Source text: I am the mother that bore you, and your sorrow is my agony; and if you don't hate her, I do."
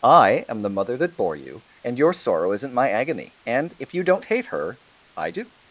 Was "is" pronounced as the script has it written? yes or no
no